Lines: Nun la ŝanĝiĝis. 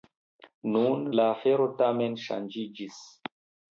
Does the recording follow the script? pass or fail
fail